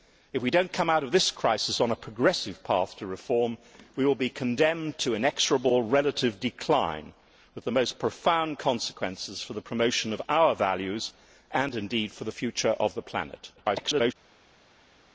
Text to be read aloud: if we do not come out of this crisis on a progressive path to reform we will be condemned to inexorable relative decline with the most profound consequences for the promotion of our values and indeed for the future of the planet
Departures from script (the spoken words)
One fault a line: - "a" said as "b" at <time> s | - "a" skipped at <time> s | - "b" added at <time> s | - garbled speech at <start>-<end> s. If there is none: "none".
- garbled speech at 13.6-14.1 s